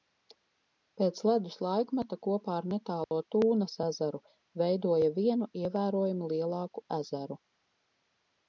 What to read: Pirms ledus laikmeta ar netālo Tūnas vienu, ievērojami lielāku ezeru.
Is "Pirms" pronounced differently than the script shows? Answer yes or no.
yes